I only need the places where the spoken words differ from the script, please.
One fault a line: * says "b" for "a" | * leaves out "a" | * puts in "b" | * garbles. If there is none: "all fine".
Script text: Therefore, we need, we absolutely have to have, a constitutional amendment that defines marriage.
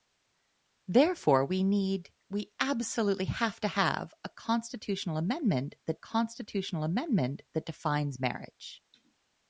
* puts in "constitutional amendment that"